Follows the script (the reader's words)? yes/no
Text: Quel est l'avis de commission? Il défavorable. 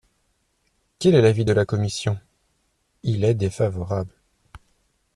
no